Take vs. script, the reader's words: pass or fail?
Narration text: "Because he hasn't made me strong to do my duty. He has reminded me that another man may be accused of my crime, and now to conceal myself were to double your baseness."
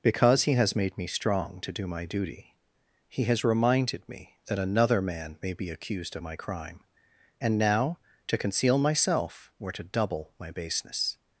fail